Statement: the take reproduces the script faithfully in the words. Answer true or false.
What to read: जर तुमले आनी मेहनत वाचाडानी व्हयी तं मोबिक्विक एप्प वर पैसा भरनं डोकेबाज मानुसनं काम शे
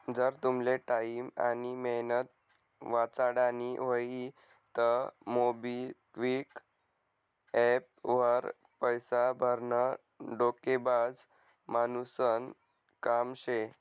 false